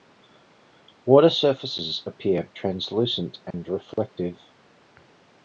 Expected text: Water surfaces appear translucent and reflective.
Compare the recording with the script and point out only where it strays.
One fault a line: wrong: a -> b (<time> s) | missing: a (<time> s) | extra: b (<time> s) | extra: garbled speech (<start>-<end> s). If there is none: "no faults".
no faults